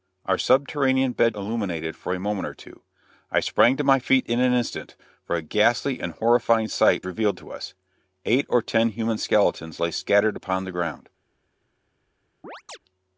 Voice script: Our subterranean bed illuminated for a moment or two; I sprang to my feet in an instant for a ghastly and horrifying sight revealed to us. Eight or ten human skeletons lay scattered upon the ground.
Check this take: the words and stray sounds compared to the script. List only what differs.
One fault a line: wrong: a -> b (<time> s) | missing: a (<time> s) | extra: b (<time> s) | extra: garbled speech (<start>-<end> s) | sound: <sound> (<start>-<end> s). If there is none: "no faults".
sound: chirp (12.4-12.8 s)